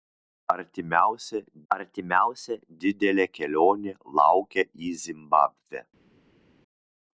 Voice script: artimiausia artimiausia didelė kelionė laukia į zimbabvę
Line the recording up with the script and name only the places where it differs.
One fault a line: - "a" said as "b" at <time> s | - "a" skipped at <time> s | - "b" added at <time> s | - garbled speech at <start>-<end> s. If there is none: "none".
none